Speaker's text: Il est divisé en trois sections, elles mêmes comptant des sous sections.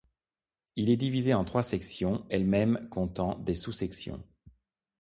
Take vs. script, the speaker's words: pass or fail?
pass